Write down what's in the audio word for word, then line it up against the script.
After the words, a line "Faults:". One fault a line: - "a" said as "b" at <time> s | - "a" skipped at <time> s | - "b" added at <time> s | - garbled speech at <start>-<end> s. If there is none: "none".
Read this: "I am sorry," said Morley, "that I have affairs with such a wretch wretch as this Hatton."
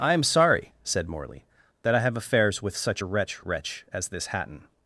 "I am sorry," said Morley, "that I have affairs with such a wretch wretch as this Hatton."
Faults:
none